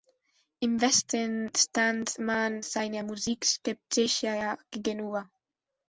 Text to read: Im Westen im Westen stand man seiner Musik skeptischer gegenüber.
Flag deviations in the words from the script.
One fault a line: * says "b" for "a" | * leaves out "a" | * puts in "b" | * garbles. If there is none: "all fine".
* leaves out "im Westen"